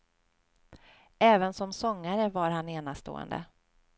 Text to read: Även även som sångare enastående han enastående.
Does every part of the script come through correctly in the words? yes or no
no